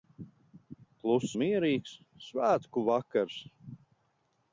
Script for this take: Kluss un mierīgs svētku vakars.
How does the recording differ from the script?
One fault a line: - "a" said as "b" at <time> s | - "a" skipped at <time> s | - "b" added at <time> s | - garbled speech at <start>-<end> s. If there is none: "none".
- "un" skipped at 1.4 s